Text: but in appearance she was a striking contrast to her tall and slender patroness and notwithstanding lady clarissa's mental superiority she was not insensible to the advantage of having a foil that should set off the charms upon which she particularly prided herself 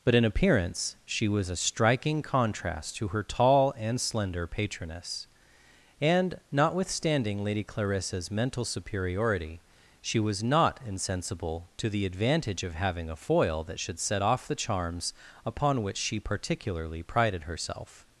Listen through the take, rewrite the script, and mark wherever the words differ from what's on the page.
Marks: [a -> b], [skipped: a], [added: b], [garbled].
but in appearance she was a striking contrast to her tall and slender patroness and notwithstanding lady clarissa's mental superiority she was not insensible to the advantage of having a foil that should set off the charms upon which she particularly prided herself